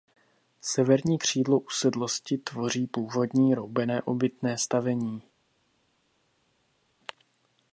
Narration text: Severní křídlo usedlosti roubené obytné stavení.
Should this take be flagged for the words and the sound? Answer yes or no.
yes